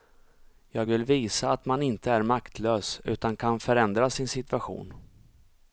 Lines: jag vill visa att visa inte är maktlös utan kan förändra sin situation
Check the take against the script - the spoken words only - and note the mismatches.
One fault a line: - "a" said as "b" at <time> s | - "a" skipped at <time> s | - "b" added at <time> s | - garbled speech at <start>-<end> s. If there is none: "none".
- "visa" said as "man" at 1.6 s